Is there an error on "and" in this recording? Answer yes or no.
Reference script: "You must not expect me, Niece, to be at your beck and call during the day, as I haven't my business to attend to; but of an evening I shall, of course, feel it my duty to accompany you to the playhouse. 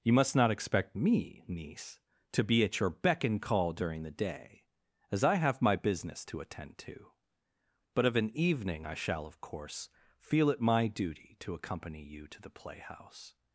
no